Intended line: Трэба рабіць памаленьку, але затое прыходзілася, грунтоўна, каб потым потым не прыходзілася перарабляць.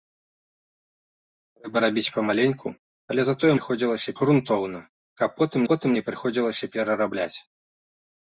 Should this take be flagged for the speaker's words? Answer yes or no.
no